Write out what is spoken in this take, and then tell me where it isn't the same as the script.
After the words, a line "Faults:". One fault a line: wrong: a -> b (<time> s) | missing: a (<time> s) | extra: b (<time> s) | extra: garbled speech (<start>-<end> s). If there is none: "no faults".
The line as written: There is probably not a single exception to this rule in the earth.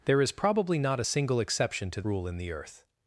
There is probably not a single exception to rule in the earth.
Faults:
missing: this (2.0 s)